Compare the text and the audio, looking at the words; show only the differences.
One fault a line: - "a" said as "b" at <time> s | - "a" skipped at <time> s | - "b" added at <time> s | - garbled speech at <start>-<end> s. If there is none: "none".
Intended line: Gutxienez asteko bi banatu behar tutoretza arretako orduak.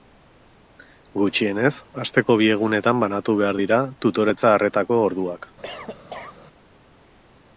- "egunetan" added at 2.5 s
- "dira" added at 3.6 s